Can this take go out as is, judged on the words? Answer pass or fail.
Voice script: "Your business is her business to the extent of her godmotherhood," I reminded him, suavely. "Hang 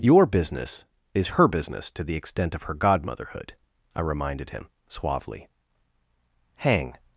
pass